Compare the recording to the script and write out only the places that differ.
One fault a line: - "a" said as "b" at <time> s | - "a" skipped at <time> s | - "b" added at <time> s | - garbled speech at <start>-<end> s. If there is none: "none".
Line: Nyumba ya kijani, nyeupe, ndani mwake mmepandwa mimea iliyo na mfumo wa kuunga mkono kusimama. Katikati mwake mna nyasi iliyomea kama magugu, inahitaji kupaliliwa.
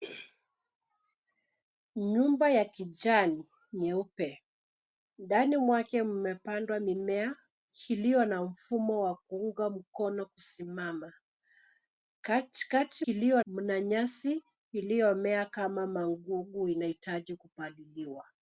- "mwake" said as "iliyo" at 13.1 s